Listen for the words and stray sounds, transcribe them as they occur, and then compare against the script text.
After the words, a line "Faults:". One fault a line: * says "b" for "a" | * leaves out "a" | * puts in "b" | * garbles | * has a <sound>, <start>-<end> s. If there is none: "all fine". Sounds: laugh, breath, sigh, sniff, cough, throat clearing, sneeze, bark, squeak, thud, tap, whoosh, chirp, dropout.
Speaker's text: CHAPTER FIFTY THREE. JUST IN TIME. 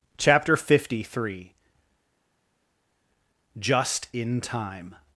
CHAPTER FIFTY THREE. JUST IN TIME.
Faults:
all fine